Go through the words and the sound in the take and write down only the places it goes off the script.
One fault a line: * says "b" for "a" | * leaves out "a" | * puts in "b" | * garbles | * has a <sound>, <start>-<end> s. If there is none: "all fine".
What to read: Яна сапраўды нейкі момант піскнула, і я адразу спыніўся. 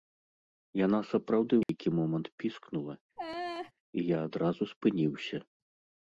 * has a dropout, 1.6-1.7 s
* has a laugh, 3.2-3.7 s